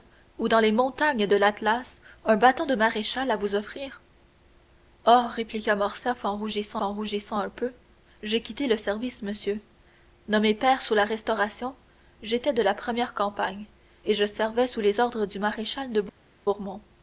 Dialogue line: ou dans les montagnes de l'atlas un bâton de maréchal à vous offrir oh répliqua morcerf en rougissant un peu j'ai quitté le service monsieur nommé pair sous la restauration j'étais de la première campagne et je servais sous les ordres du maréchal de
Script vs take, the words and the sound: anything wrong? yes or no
yes